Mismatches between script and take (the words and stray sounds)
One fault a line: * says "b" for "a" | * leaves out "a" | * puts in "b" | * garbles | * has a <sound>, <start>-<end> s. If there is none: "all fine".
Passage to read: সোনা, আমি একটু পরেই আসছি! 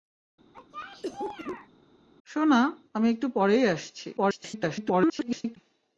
* has a cough, 0.5-1.7 s
* garbles